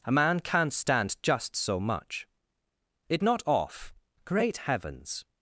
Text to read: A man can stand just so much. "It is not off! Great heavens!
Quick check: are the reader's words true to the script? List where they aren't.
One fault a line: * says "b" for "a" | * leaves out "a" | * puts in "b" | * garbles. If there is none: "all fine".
* says "can't" for "can"
* leaves out "is"